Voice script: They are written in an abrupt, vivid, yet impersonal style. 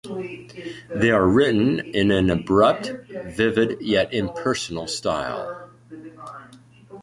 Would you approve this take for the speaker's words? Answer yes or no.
yes